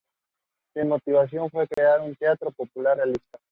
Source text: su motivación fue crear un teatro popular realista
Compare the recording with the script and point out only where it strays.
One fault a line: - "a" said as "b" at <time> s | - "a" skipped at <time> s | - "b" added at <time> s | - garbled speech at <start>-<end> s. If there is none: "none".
none